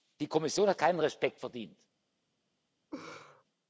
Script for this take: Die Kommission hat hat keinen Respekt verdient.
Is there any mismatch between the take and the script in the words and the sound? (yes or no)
yes